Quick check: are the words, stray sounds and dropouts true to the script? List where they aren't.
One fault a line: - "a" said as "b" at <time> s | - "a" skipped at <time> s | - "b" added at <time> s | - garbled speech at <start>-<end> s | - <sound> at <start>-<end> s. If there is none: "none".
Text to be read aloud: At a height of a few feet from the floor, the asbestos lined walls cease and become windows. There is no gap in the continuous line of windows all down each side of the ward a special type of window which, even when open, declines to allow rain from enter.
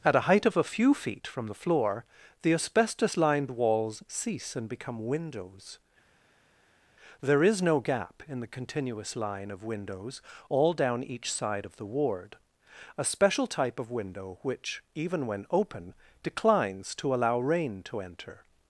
- "from" said as "to" at 17.8 s